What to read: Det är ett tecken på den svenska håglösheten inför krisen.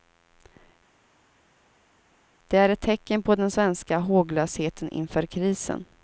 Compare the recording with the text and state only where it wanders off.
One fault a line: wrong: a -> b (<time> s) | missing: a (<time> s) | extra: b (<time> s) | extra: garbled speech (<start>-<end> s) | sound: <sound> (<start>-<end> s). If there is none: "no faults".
no faults